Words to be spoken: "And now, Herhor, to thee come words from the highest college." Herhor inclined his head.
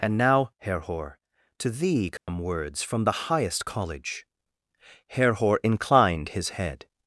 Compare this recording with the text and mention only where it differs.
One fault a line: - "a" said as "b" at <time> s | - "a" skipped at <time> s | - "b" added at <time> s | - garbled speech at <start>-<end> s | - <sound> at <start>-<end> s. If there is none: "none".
- dropout at 2.2-2.3 s